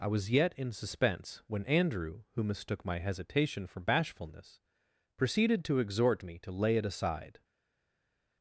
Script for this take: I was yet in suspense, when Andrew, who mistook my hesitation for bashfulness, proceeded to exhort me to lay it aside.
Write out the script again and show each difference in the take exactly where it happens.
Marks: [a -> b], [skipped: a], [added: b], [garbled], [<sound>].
I was yet in suspense, when Andrew, who mistook my hesitation for bashfulness, proceeded to exhort me to lay it aside.